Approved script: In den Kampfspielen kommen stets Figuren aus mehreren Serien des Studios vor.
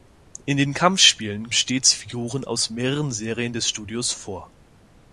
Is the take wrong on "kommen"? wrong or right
wrong